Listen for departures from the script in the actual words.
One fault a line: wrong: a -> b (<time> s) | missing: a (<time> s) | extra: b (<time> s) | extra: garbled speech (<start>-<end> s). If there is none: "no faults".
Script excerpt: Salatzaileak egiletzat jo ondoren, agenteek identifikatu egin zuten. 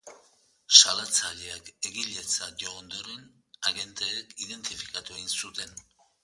no faults